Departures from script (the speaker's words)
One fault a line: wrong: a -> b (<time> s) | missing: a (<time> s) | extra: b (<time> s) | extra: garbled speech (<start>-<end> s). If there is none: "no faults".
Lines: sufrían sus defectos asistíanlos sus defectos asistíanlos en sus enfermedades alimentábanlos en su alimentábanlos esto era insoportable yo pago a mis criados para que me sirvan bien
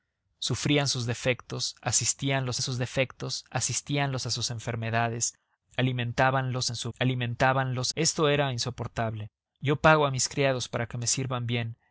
no faults